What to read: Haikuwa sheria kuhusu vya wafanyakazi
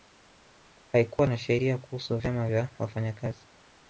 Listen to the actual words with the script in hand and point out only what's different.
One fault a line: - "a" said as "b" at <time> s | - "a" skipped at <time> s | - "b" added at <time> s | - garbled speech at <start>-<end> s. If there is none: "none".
- "na" added at 1.3 s
- "vyama" added at 2.2 s